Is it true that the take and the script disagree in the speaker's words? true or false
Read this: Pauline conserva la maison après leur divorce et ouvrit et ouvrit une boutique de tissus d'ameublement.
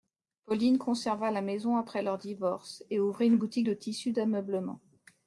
true